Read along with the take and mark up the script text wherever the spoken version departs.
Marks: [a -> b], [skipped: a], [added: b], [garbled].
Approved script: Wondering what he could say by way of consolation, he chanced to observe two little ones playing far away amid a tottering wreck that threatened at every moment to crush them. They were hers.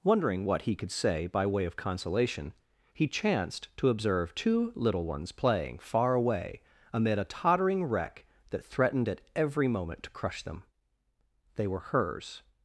Wondering what he could say by way of consolation, he chanced to observe two little ones playing far away amid a tottering wreck that threatened at every moment to crush them. They were hers.